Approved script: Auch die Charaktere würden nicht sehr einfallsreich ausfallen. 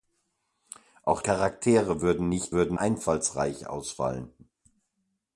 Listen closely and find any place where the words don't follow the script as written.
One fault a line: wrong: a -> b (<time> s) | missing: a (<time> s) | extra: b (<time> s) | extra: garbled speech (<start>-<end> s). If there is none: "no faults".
missing: die (1.2 s)
wrong: sehr -> würden (2.5 s)